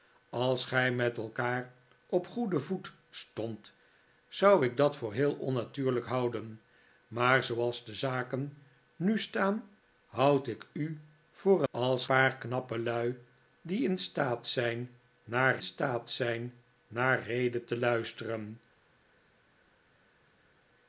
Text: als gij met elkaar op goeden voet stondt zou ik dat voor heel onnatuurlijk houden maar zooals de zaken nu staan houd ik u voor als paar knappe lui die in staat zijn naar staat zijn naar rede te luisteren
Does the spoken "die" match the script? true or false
true